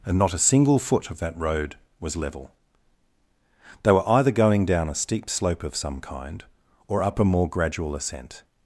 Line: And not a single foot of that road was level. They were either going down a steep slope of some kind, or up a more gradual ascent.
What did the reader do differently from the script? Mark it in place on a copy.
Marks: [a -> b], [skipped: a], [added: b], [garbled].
And not a single foot of that road was level. They were either going down a steep slope of some kind, or up a more gradual ascent.